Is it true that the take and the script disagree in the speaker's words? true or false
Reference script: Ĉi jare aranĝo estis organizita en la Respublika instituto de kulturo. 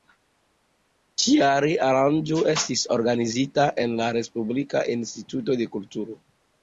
false